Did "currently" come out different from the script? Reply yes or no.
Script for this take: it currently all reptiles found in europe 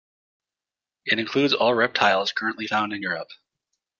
yes